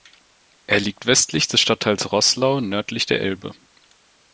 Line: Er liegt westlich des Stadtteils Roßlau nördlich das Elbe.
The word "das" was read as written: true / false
false